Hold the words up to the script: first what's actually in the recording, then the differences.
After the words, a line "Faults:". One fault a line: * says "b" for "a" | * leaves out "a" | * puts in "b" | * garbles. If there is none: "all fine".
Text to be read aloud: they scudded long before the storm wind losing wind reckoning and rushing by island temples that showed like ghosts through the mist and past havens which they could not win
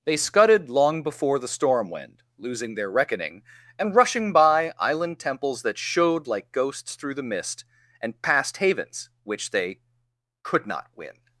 they scudded long before the storm wind losing their reckoning and rushing by island temples that showed like ghosts through the mist and past havens which they could not win
Faults:
* says "their" for "wind"